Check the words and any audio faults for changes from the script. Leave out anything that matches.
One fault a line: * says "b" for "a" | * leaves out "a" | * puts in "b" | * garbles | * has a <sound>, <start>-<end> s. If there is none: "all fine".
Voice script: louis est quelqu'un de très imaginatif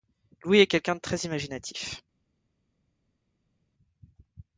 all fine